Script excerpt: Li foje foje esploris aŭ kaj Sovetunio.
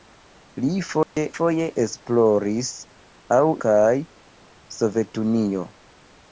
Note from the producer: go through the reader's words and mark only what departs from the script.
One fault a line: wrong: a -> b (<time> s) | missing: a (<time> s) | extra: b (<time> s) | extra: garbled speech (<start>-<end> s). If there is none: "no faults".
no faults